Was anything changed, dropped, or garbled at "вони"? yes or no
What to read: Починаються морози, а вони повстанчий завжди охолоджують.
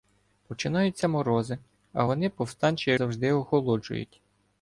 no